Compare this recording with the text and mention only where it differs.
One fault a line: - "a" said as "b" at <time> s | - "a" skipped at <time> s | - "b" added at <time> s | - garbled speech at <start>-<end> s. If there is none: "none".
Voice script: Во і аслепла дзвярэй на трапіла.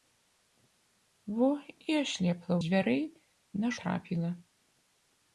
none